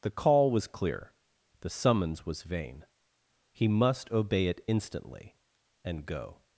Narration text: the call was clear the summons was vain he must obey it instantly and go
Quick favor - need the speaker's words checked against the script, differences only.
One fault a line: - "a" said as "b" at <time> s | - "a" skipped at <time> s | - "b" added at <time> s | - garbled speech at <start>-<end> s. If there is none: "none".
none